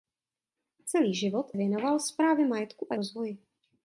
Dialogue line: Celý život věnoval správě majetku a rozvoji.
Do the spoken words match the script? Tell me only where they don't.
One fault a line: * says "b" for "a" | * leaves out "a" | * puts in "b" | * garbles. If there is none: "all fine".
all fine